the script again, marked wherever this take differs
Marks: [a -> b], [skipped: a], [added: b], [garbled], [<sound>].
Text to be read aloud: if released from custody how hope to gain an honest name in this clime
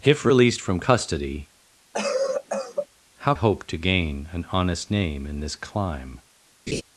if released from custody [cough] how hope to gain an honest name in this clime [laugh]